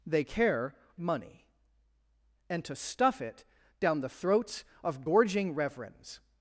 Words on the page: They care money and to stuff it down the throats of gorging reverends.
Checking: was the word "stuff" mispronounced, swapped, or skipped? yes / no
no